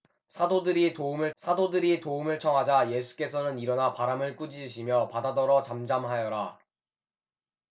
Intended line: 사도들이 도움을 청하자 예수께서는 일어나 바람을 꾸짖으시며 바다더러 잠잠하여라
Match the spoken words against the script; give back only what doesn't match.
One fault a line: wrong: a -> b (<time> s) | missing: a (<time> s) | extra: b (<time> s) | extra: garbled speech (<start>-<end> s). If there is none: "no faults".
extra: 사도들이 도움을 (1.4 s)